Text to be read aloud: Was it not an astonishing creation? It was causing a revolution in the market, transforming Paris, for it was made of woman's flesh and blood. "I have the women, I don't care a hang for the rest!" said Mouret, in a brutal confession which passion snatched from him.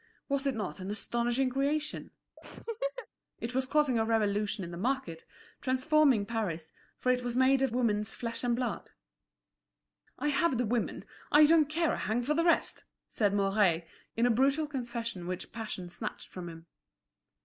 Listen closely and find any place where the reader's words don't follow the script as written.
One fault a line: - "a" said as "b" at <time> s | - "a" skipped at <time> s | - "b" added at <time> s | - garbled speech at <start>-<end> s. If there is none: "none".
none